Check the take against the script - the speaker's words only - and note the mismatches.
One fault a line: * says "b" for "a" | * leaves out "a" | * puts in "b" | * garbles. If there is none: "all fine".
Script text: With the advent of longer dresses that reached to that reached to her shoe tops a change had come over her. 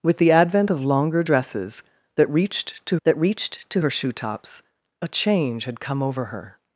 all fine